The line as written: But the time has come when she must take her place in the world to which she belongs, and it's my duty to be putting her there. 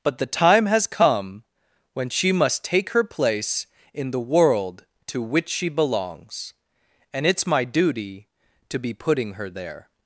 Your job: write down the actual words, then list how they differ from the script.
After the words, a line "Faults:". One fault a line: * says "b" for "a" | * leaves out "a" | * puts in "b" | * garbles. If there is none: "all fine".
But the time has come when she must take her place in the world to which she belongs, and it's my duty to be putting her there.
Faults:
all fine